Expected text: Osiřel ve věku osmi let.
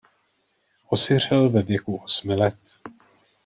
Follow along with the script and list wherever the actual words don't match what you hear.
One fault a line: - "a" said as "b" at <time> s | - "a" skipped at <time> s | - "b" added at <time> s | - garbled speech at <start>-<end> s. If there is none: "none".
none